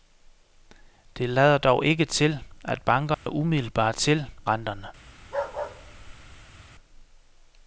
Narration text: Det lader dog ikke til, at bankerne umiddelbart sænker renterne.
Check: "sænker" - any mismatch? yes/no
yes